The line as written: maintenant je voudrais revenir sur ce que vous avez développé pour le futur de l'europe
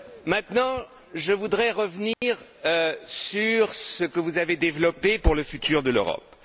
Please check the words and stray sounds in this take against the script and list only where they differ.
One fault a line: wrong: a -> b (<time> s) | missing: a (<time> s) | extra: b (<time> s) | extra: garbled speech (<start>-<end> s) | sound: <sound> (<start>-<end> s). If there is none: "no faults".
sound: dropout (2.1-2.2 s)